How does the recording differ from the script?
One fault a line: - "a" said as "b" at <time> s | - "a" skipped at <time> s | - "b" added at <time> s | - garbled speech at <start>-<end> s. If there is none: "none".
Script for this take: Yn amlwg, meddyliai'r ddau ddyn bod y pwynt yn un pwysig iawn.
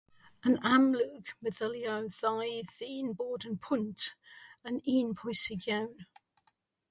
none